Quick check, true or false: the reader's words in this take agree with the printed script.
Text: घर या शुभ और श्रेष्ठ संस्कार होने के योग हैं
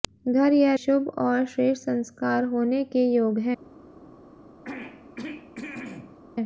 true